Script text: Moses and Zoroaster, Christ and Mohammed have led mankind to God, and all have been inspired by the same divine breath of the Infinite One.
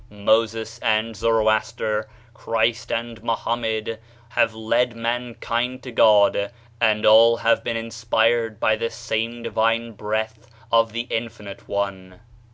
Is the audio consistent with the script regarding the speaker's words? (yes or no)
yes